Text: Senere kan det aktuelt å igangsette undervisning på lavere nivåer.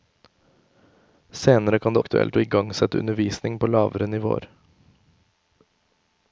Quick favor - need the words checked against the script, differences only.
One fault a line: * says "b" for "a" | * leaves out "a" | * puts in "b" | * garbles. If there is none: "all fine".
all fine